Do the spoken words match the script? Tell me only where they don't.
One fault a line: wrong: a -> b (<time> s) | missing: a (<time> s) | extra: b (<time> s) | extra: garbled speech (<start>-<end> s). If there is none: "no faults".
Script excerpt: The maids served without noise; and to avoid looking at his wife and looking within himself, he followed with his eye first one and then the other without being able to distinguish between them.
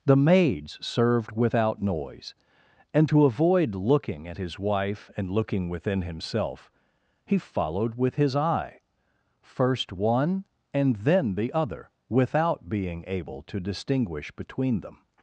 no faults